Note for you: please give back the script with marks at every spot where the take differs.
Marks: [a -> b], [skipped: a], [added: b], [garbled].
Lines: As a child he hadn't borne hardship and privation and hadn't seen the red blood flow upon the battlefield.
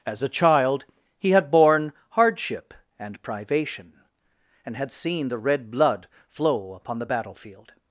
As a child he [hadn't -> had] borne hardship and privation and [hadn't -> had] seen the red blood flow upon the battlefield.